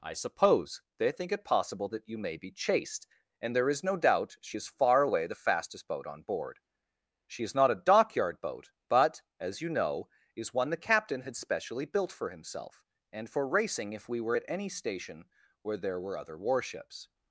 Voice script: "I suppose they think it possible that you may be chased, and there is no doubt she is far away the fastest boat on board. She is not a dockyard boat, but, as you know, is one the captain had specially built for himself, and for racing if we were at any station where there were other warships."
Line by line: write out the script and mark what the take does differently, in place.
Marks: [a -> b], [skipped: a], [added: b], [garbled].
"I suppose they think it possible that you may be chased, and there is no doubt she is far away the fastest boat on board. She is not a dockyard boat, but, as you know, is one the captain had specially built for himself, and for racing if we were at any station where there were other warships."